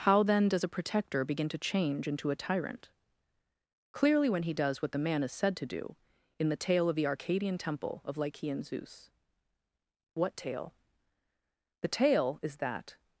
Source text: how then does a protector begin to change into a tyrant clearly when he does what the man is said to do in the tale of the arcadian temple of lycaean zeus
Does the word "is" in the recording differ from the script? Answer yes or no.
no